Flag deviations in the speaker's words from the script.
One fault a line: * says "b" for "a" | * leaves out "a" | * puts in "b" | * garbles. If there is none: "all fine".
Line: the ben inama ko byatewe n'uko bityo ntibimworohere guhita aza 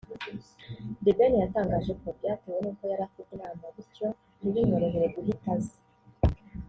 * says "yatangaje" for "inama"
* puts in "yari afite inama"